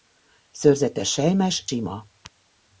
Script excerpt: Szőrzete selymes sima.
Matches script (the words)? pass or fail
pass